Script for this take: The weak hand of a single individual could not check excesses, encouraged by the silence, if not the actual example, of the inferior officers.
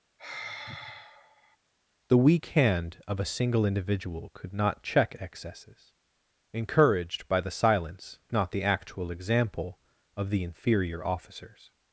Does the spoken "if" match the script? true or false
false